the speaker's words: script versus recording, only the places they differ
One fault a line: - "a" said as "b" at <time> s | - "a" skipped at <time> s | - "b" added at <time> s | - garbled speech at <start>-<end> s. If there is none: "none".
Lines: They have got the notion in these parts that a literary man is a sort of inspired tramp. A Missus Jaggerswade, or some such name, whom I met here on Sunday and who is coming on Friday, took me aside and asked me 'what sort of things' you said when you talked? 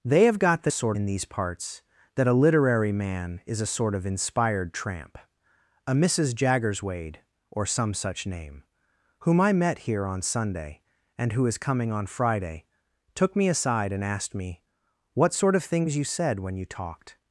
- "notion" said as "sort" at 0.7 s